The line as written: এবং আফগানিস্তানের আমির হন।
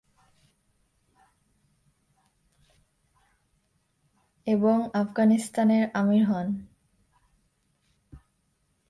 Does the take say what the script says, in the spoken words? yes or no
yes